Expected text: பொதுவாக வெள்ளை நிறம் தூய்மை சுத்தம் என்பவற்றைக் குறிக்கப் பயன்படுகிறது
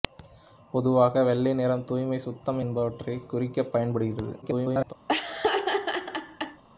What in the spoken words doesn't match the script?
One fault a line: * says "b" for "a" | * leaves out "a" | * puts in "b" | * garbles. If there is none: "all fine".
* garbles